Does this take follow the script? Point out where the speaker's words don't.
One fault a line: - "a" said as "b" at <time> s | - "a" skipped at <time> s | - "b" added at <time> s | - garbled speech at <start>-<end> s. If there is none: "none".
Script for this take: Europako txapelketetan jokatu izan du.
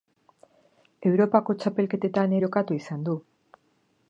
none